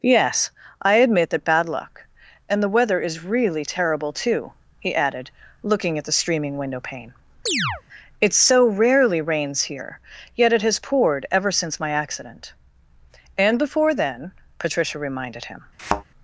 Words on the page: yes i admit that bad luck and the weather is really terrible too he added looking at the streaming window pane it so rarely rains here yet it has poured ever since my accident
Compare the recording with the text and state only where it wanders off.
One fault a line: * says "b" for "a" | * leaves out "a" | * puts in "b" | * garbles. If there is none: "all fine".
* puts in "and before then patricia reminded him"